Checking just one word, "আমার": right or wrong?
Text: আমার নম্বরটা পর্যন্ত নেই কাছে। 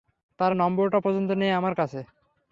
wrong